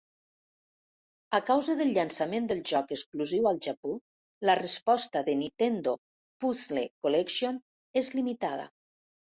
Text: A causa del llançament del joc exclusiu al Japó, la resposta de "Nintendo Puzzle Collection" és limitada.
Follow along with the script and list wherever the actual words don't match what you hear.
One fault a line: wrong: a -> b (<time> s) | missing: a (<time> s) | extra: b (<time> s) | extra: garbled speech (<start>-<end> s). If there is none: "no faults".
no faults